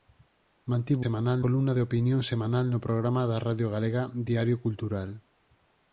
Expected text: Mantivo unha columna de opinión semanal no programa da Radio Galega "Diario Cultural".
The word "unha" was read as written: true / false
false